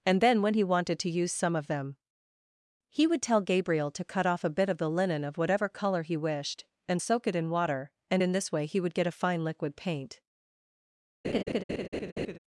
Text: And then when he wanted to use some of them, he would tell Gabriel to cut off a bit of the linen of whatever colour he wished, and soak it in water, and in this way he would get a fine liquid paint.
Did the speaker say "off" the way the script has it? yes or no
yes